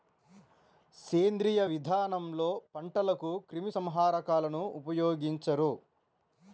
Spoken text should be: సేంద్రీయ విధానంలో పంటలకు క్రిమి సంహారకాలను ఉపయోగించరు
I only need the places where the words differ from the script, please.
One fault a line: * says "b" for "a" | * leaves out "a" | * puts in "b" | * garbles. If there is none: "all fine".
all fine